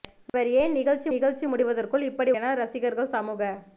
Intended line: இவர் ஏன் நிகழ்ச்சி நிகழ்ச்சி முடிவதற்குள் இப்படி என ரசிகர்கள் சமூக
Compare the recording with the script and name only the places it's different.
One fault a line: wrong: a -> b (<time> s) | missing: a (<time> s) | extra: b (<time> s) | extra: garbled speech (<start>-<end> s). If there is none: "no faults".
no faults